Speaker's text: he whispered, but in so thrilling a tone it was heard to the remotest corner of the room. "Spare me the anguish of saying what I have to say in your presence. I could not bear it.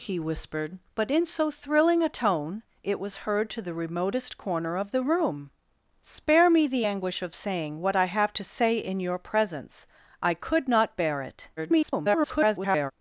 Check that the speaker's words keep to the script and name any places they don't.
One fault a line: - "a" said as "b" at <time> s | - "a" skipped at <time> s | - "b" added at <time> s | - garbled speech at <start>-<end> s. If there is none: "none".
- garbled speech at 11.6-12.9 s